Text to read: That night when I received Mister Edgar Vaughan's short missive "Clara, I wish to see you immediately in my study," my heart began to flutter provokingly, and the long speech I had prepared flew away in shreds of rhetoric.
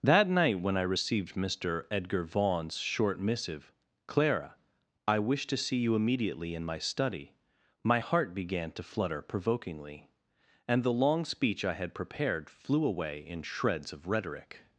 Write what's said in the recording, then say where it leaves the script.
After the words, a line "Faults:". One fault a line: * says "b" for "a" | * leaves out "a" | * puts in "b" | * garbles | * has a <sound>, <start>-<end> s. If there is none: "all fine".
That night when I received Mister Edgar Vaughan's short missive "Clara, I wish to see you immediately in my study," my heart began to flutter provokingly, and the long speech I had prepared flew away in shreds of rhetoric.
Faults:
all fine